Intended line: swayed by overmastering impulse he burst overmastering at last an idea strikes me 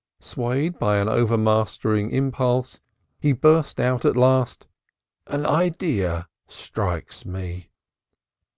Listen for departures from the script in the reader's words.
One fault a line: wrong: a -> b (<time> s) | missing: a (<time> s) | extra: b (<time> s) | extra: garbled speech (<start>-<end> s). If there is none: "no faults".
extra: an (1.0 s)
wrong: overmastering -> out (3.8 s)